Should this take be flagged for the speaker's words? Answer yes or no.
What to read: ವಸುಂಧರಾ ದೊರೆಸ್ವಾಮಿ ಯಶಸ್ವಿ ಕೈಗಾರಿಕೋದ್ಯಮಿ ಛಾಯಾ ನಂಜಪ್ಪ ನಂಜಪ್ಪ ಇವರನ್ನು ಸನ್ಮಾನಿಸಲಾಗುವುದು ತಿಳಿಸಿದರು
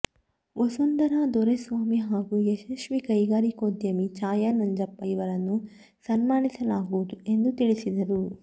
yes